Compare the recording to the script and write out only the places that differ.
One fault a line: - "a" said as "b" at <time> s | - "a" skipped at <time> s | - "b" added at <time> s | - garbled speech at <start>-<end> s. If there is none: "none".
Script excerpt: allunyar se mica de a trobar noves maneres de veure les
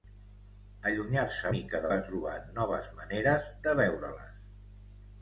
none